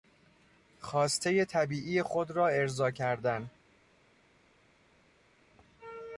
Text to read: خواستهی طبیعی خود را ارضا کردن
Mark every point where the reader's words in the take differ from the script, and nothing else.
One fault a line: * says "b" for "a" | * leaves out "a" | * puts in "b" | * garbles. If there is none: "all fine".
all fine